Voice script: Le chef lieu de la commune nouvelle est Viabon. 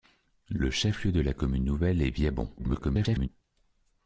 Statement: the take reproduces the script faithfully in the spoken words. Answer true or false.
false